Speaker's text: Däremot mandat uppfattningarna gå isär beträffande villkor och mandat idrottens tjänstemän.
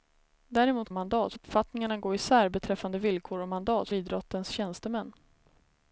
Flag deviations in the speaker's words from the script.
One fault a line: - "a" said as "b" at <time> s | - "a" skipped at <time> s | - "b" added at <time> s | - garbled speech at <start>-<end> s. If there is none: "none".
none